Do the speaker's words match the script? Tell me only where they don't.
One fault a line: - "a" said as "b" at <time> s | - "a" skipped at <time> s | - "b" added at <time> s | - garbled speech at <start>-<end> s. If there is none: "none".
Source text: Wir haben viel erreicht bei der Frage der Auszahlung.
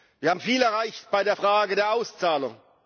none